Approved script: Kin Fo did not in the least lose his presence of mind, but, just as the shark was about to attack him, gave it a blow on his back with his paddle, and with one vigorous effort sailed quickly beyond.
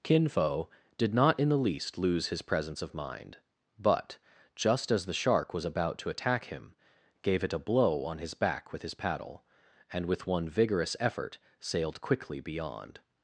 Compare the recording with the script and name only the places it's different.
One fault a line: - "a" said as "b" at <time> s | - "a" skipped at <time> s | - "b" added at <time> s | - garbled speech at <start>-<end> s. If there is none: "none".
none